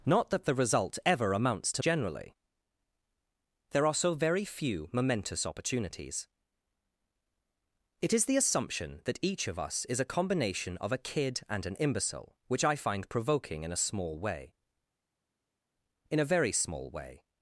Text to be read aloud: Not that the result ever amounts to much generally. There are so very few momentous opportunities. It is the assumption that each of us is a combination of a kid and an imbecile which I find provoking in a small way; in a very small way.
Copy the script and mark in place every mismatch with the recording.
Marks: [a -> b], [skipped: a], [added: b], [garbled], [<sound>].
Not that the result ever amounts to [skipped: much] generally. There are so very few momentous opportunities. It is the assumption that each of us is a combination of a kid and an imbecile which I find provoking in a small way; in a very small way.